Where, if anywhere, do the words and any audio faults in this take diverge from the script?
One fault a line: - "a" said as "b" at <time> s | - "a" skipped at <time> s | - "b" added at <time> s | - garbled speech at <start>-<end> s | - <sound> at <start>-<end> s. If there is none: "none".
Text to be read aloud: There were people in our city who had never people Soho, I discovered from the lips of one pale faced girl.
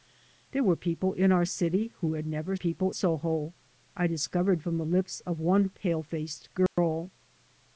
- dropout at 6.7-6.8 s